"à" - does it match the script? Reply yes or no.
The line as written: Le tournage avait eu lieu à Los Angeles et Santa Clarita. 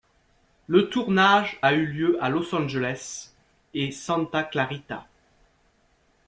yes